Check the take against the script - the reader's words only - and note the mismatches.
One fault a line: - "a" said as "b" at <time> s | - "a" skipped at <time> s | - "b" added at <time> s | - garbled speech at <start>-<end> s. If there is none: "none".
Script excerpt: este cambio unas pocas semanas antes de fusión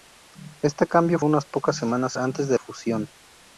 none